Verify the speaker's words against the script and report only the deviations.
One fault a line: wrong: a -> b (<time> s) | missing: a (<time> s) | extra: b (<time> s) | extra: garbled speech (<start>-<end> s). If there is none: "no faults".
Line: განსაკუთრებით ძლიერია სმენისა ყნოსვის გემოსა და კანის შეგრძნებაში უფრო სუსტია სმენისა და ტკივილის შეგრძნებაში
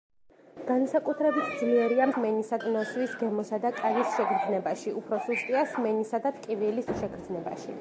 no faults